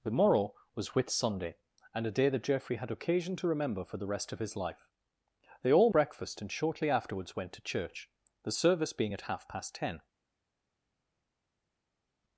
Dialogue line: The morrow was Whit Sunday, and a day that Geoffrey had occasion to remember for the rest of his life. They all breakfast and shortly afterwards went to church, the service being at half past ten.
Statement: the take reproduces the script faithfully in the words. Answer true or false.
true